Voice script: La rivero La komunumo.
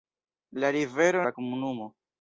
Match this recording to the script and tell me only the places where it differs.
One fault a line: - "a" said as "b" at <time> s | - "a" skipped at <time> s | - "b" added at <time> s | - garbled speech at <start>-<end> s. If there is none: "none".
none